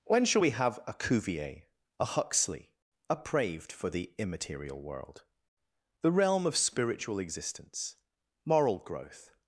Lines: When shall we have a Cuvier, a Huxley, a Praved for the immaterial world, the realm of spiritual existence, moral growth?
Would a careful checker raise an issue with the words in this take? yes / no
no